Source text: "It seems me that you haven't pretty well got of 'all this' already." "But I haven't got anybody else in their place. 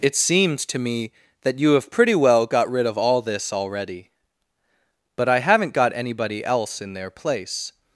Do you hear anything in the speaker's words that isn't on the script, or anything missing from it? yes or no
yes